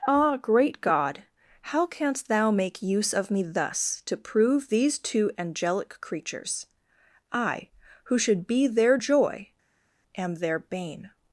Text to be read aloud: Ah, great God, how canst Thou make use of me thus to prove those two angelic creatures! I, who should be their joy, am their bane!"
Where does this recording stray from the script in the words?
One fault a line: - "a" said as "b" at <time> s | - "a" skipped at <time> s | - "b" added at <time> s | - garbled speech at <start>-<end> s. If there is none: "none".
- "those" said as "these" at 4.7 s